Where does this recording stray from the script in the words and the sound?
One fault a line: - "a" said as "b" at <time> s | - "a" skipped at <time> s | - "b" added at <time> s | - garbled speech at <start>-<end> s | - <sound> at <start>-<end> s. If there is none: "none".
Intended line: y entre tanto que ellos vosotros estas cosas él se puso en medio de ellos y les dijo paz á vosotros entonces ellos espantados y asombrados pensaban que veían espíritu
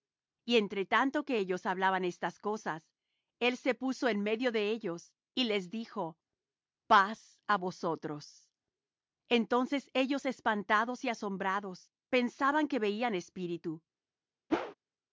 - "vosotros" said as "hablaban" at 1.7 s
- whoosh at 14.5-14.7 s